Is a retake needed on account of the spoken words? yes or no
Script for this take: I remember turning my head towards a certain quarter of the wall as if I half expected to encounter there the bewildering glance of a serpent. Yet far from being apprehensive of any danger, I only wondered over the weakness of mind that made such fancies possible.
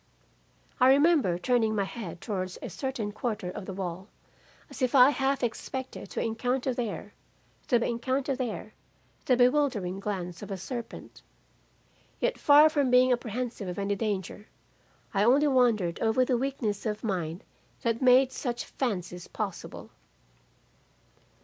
yes